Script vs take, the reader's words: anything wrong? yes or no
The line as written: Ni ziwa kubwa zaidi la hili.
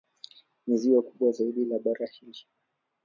yes